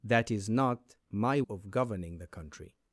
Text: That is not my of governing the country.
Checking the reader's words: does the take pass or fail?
pass